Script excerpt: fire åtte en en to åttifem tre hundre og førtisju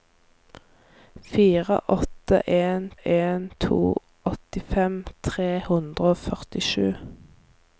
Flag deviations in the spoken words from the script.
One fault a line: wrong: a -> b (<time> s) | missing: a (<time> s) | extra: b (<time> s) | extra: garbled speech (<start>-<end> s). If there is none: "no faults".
no faults